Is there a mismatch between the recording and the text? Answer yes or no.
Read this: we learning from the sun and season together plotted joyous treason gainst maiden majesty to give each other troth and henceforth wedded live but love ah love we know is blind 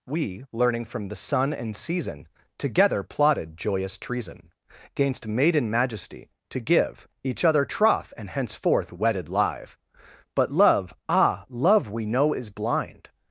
no